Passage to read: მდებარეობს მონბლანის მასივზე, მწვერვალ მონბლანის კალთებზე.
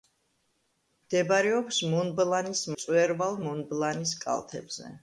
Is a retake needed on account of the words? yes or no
yes